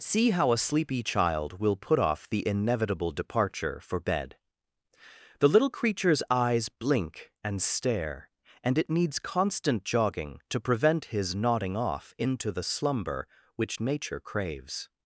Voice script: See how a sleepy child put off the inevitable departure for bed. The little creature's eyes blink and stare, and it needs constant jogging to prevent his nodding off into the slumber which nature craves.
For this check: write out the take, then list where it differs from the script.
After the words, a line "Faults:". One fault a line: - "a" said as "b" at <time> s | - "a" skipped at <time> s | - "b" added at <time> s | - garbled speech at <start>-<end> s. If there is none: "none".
See how a sleepy child will put off the inevitable departure for bed. The little creature's eyes blink and stare, and it needs constant jogging to prevent his nodding off into the slumber which nature craves.
Faults:
- "will" added at 1.6 s